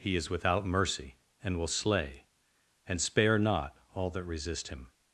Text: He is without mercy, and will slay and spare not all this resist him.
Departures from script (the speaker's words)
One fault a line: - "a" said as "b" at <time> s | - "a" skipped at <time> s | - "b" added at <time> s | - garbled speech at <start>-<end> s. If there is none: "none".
- "this" said as "that" at 4.1 s